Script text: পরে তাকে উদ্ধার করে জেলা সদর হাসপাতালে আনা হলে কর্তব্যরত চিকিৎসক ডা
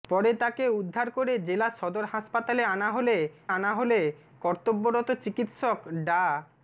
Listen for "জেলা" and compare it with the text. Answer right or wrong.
right